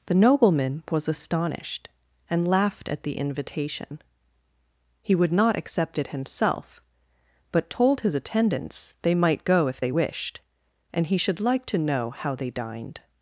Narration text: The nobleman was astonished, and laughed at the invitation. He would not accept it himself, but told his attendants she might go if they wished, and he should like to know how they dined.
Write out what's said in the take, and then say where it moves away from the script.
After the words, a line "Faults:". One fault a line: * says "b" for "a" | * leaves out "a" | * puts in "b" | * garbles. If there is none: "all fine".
The nobleman was astonished, and laughed at the invitation. He would not accept it himself, but told his attendants they might go if they wished, and he should like to know how they dined.
Faults:
* says "they" for "she"